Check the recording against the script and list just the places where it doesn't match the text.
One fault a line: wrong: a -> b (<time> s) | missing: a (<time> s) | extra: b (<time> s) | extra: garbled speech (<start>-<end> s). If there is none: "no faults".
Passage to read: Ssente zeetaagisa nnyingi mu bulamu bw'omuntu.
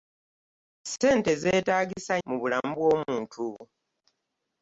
missing: nnyingi (2.1 s)